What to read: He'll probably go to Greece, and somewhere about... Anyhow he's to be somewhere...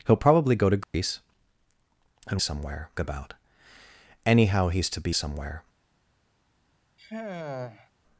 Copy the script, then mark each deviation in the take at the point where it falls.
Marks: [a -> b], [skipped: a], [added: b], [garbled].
He'll probably go to Greece, and somewhere about... Anyhow he's to be somewhere...